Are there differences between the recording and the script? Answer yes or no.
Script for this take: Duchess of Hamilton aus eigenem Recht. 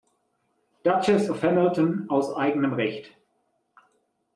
no